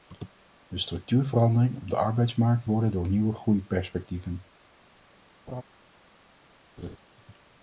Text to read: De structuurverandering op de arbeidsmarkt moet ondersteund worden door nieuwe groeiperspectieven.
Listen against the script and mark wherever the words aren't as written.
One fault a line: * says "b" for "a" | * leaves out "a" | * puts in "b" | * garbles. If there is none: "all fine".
* leaves out "moet ondersteund"